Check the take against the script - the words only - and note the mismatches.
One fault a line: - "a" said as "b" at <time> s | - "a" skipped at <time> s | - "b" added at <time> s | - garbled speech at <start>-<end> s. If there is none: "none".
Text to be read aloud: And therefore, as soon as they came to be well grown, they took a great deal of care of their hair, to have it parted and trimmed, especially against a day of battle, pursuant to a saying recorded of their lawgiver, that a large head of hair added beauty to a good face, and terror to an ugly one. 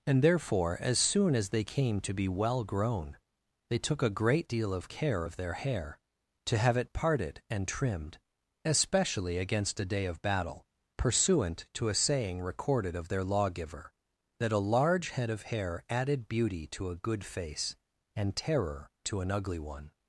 none